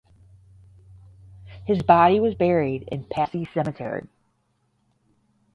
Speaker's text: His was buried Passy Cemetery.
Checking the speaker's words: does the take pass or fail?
fail